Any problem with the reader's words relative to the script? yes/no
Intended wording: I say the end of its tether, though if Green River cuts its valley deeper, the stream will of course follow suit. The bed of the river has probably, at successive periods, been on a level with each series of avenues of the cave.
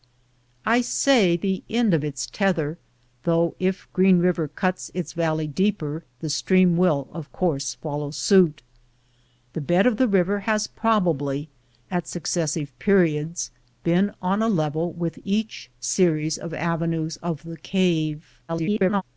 yes